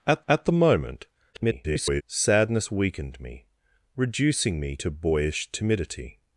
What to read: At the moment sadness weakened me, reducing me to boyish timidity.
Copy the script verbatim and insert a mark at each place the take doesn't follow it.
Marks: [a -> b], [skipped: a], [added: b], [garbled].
At [added: at] the moment [garbled] sadness weakened me, reducing me to boyish timidity.